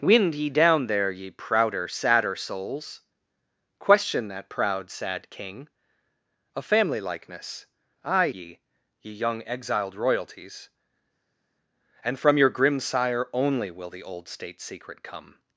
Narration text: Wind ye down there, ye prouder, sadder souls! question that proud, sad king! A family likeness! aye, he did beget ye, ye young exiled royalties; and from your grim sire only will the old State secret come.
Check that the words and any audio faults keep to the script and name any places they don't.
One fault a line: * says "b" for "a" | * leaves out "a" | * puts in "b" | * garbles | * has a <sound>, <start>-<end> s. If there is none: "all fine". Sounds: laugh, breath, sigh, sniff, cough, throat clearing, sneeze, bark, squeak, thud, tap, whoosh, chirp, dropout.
* leaves out "he did beget"